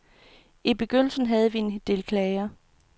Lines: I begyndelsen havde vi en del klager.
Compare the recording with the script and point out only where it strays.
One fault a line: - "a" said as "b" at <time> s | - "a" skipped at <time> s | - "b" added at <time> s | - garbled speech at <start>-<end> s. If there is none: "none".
none